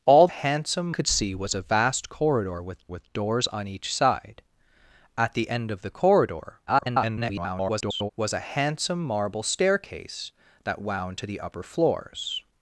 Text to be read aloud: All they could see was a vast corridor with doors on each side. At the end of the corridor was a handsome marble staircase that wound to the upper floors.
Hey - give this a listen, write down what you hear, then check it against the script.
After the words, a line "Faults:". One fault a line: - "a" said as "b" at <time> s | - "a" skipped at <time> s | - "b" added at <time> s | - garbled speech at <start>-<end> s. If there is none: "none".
All handsome could see was a vast corridor with with doors on each side. At the end of the corridor [garbled] was a handsome marble staircase that wound to the upper floors.
Faults:
- "they" said as "handsome" at 0.3 s
- "with" added at 2.9 s
- garbled speech at 6.7-8.1 s